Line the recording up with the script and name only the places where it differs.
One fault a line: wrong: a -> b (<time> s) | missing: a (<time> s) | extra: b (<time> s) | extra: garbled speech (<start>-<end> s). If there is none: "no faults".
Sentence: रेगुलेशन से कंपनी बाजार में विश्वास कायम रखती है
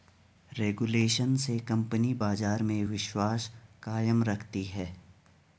no faults